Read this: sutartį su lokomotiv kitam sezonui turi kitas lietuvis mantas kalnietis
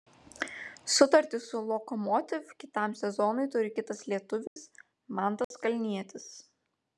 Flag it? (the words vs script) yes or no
no